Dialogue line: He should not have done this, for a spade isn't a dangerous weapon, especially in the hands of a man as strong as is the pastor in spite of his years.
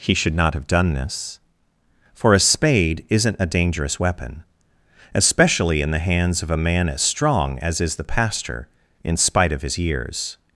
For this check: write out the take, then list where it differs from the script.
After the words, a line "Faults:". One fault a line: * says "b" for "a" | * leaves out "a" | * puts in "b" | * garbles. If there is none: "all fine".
He should not have done this, for a spade isn't a dangerous weapon, especially in the hands of a man as strong as is the pastor in spite of his years.
Faults:
all fine